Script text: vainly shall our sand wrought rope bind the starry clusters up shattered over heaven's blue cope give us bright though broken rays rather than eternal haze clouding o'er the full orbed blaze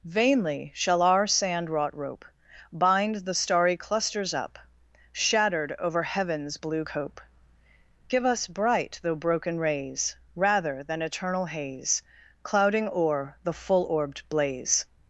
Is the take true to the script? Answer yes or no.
yes